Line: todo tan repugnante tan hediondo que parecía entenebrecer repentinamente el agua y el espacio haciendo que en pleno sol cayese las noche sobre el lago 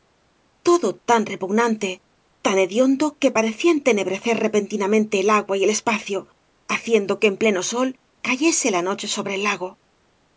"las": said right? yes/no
no